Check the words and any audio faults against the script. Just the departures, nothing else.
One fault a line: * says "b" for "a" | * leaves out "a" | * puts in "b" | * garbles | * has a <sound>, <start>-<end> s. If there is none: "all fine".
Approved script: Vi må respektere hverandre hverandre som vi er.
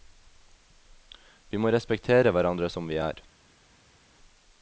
* leaves out "hverandre"